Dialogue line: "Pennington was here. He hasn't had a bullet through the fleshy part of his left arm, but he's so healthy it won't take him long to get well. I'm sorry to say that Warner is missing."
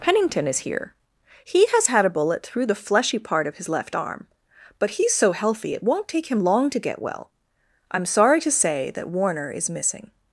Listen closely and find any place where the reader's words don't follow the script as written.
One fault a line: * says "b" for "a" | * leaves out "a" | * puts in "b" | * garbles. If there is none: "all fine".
* says "is" for "was"
* says "has" for "hasn't"